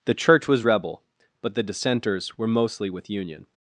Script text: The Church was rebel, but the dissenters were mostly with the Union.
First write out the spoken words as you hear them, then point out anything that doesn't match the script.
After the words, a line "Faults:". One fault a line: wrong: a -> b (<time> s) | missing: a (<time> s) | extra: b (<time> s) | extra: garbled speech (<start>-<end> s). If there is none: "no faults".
The Church was rebel, but the dissenters were mostly with Union.
Faults:
missing: the (3.1 s)